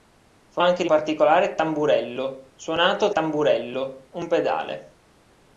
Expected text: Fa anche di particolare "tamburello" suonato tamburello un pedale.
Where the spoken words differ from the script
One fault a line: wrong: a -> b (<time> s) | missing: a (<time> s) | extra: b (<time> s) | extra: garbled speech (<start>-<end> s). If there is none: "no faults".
no faults